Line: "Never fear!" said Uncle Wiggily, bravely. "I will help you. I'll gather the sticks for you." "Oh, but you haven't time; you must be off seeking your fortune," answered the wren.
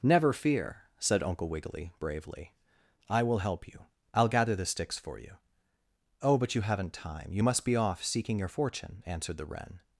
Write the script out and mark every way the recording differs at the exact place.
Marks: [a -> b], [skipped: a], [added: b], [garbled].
"Never fear!" said Uncle Wiggily, bravely. "I will help you. I'll gather the sticks for you." "Oh, but you haven't time; you must be off seeking your fortune," answered the wren.